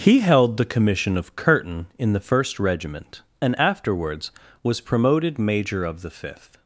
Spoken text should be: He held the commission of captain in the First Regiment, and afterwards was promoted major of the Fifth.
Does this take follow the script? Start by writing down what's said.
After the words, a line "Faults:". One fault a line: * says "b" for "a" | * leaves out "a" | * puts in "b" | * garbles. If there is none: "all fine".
He held the commission of curtain in the First Regiment, and afterwards was promoted major of the Fifth.
Faults:
* says "curtain" for "captain"